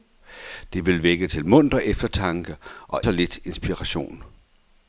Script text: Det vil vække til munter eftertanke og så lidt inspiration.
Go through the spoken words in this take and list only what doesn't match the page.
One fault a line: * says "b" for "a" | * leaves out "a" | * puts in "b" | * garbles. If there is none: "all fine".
all fine